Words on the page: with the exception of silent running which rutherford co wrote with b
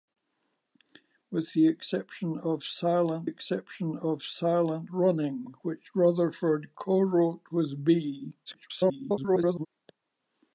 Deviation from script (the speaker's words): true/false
true